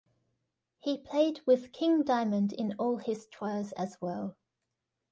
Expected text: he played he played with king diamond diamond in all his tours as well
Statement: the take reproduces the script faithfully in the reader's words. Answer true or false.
false